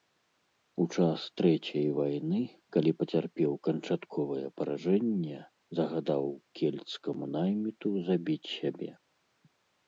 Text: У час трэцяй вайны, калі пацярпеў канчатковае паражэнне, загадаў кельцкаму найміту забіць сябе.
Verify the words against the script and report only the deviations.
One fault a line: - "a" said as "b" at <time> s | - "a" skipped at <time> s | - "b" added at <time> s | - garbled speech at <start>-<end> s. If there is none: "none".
none